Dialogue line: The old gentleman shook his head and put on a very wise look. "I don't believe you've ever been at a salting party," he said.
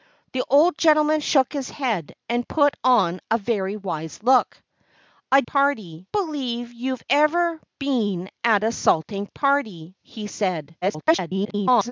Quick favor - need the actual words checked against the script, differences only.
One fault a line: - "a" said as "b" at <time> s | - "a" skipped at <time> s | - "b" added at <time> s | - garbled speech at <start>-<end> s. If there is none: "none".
- "don't" said as "party" at 5.4 s
- garbled speech at 10.8-11.9 s